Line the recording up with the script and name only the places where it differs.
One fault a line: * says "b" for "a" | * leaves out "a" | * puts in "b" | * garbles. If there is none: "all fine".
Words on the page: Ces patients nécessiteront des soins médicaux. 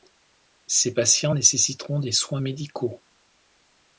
all fine